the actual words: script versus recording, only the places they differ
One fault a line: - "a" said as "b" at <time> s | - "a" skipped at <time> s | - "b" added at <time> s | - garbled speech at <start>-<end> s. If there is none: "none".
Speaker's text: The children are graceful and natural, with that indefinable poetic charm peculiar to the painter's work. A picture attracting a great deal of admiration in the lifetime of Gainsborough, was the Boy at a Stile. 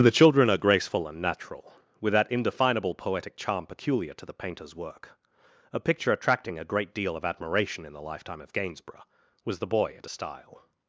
none